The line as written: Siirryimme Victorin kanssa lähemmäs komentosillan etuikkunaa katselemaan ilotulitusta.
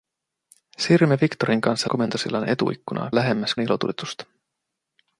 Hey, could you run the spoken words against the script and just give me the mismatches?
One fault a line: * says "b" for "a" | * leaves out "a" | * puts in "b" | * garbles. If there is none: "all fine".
* leaves out "lähemmäs"
* says "lähemmäs" for "katselemaan"